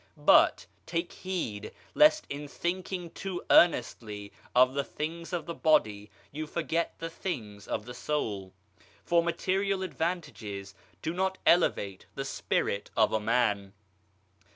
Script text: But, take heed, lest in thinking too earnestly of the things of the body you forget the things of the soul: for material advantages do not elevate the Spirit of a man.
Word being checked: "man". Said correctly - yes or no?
yes